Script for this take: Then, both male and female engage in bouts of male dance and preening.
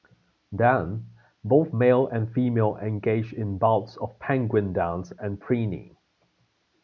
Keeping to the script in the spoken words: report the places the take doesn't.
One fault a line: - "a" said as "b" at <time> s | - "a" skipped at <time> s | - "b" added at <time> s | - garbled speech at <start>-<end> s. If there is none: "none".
- "male" said as "penguin" at 4.2 s